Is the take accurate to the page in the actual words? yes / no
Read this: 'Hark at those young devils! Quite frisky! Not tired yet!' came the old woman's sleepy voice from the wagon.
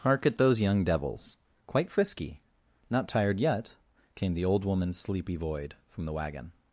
no